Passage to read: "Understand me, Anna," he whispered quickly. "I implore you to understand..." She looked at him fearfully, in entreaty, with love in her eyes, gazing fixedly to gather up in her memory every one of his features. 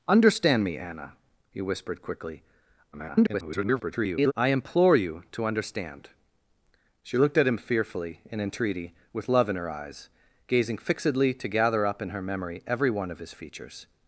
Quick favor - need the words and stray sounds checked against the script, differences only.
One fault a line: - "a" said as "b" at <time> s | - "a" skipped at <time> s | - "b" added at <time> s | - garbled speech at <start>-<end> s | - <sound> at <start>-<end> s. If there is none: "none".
- garbled speech at 2.9-4.3 s